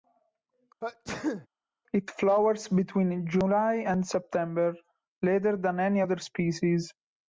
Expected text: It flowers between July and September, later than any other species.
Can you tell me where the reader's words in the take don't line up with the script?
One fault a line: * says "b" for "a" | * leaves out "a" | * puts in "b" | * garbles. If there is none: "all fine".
all fine